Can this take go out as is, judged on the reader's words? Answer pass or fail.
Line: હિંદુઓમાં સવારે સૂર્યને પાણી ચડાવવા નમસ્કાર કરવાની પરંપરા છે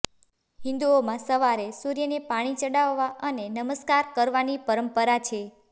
fail